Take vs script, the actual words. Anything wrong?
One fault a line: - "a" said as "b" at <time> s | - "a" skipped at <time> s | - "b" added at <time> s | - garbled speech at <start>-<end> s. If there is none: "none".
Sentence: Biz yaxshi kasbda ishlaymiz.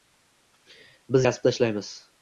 - "yaxshi" skipped at 1.3 s